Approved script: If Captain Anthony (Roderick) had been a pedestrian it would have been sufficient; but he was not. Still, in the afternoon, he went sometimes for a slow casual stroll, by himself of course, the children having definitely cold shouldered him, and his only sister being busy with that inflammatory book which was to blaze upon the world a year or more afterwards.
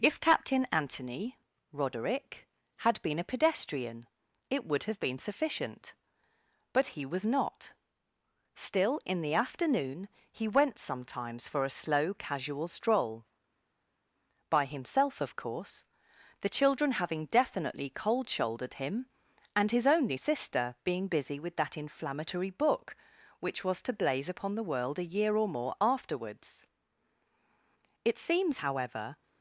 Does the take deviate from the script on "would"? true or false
false